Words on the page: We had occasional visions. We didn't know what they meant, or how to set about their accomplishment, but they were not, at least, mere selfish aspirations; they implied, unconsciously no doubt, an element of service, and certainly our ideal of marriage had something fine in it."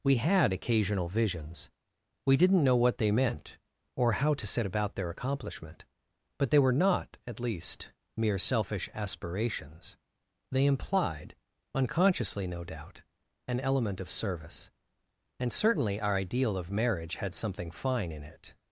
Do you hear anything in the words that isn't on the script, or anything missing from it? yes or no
no